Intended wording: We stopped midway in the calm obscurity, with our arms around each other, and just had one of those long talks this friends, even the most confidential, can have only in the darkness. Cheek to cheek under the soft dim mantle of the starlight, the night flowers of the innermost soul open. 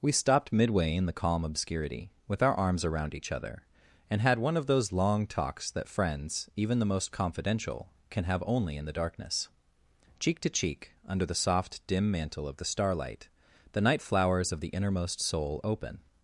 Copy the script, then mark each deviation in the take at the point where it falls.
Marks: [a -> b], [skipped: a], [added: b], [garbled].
We stopped midway in the calm obscurity, with our arms around each other, and [skipped: just] had one of those long talks [this -> that] friends, even the most confidential, can have only in the darkness. Cheek to cheek under the soft dim mantle of the starlight, the night flowers of the innermost soul open.